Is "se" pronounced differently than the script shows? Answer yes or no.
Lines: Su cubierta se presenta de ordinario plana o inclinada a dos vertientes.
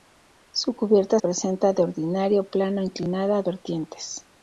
yes